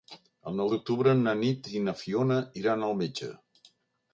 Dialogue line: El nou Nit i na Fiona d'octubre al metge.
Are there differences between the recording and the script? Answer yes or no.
yes